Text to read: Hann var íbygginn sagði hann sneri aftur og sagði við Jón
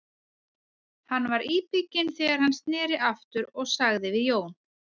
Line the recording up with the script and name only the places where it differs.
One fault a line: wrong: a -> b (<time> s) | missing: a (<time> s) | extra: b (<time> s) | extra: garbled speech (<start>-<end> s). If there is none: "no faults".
wrong: sagði -> þegar (2.2 s)